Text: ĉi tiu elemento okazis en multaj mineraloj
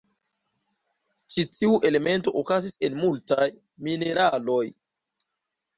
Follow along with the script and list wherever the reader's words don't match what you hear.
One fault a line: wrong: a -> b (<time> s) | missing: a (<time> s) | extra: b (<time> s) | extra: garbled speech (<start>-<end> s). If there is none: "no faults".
no faults